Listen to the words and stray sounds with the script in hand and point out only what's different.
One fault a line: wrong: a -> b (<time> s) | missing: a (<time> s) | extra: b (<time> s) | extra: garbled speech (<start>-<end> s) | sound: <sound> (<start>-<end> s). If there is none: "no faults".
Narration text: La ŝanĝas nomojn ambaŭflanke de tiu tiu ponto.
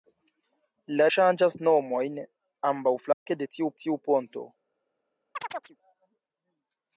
sound: dropout (3.1-3.3 s)
sound: chirp (5.3-5.8 s)